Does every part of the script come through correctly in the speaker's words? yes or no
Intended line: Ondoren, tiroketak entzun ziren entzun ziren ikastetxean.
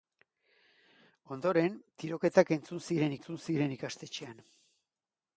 yes